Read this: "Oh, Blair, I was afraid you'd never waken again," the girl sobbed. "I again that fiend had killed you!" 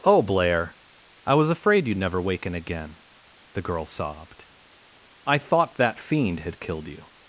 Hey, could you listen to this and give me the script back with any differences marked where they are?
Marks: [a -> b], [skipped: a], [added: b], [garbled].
"Oh, Blair, I was afraid you'd never waken again," the girl sobbed. "I [again -> thought] that fiend had killed you!"